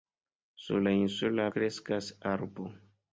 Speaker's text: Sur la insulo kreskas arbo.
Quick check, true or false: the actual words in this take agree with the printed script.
true